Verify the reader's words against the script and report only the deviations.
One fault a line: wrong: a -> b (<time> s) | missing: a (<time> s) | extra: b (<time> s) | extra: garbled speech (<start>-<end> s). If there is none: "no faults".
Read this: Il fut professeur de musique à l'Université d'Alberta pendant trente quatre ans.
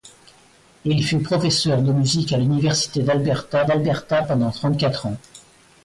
extra: d'Alberta (3.6 s)